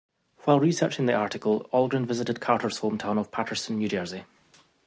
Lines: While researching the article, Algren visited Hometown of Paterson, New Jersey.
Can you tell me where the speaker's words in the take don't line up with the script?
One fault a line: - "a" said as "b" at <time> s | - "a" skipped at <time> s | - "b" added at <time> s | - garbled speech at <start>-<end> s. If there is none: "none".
- "Carter's" added at 2.4 s